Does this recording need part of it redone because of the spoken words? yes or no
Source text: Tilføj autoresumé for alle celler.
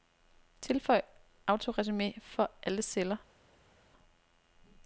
no